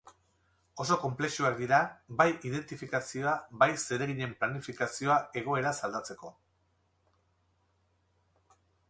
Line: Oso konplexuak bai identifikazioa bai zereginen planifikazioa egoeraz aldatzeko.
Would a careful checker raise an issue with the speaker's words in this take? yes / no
yes